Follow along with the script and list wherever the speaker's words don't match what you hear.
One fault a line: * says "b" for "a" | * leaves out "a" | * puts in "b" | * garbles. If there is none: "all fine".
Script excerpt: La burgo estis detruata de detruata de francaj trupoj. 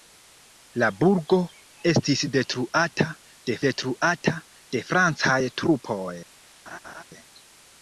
all fine